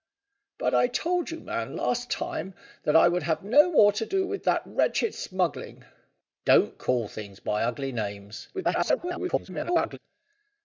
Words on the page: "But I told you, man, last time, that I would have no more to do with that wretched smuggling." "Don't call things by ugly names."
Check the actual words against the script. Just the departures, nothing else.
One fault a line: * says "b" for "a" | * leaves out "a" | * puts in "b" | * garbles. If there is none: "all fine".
* garbles